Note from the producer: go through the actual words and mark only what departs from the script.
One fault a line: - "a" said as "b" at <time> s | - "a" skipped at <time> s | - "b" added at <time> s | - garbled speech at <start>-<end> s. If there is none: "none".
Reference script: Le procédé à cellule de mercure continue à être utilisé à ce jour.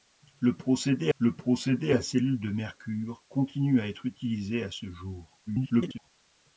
- "le procédé" added at 1.2 s
- garbled speech at 5.5-6.1 s